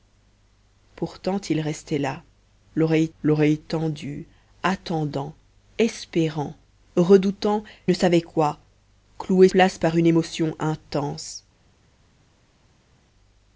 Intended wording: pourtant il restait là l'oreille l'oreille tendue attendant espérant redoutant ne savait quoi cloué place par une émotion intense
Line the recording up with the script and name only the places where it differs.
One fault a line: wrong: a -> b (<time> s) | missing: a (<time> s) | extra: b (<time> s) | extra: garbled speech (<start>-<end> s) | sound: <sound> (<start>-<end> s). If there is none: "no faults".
no faults